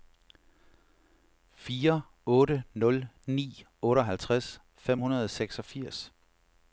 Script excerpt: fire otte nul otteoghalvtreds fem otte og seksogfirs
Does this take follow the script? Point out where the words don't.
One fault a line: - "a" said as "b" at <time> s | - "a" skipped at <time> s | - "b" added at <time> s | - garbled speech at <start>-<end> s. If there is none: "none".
- "ni" added at 3.3 s
- "otte" said as "hundrede" at 5.0 s